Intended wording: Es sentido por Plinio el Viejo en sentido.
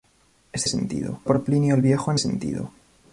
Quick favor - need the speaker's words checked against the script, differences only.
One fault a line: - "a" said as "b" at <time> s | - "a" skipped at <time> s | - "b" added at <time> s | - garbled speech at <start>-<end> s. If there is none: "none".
none